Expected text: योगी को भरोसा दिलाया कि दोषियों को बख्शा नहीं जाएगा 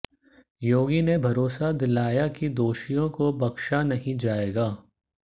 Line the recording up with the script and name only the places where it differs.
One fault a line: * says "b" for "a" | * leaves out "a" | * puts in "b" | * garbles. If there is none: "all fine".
* says "ने" for "को"